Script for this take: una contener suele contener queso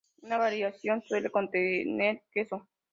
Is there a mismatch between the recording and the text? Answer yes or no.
yes